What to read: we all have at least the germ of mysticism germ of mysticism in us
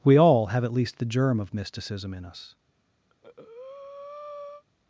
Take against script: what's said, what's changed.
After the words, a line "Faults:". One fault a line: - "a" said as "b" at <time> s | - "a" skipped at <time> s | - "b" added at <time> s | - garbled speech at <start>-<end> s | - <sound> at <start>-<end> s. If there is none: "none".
we all have at least the germ of mysticism in us
Faults:
- "germ of mysticism" skipped at 2.1 s
- breath at 3.1-4.6 s